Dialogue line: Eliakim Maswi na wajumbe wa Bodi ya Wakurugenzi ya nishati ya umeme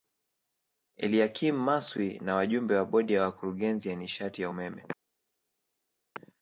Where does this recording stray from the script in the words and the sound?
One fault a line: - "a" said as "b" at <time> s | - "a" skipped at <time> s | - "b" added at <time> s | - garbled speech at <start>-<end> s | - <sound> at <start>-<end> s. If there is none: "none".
none